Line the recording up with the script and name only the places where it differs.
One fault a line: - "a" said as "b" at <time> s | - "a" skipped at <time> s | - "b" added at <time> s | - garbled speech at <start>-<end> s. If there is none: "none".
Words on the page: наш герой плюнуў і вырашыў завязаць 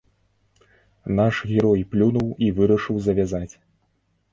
none